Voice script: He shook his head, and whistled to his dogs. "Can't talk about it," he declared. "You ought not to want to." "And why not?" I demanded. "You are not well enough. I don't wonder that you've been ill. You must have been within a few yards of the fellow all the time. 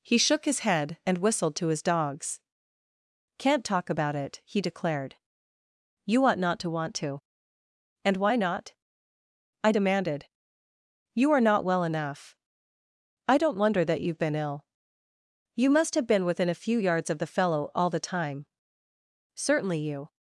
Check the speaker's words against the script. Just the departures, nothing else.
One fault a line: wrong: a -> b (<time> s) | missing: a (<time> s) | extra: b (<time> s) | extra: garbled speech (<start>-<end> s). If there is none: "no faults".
extra: Certainly you (19.3 s)